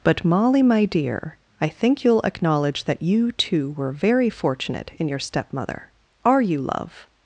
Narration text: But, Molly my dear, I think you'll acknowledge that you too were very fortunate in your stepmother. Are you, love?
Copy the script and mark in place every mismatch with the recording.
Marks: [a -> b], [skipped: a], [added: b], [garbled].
But, Molly my dear, I think you'll acknowledge that you too were very fortunate in your stepmother. Are you, love?